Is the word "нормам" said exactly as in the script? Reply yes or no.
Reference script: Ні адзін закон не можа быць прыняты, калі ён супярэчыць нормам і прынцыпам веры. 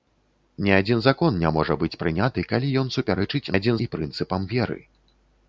no